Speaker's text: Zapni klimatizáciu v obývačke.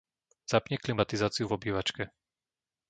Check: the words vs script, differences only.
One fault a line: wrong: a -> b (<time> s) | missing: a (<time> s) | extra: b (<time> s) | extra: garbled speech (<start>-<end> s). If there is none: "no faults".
no faults